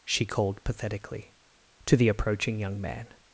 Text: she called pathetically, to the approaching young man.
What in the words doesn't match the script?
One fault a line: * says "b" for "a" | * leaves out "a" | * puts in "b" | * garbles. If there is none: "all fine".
all fine